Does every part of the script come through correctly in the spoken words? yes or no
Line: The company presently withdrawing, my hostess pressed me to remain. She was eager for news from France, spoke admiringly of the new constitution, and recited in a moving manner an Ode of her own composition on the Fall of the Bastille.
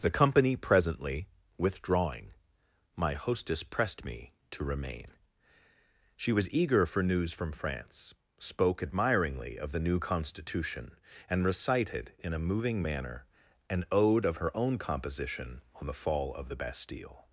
yes